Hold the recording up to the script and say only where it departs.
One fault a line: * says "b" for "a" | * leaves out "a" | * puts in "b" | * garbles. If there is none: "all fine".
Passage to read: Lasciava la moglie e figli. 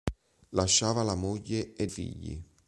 all fine